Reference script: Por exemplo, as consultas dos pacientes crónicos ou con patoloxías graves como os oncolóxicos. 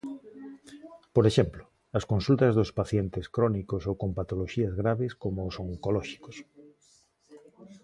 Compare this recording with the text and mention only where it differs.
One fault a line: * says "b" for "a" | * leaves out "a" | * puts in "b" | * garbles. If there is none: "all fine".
all fine